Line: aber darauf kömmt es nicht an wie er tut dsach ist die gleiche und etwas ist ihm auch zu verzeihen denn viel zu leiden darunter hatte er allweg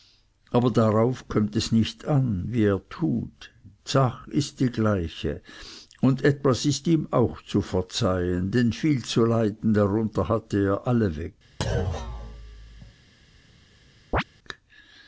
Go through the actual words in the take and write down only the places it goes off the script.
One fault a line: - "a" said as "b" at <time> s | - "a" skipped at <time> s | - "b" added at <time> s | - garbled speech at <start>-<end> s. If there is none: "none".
none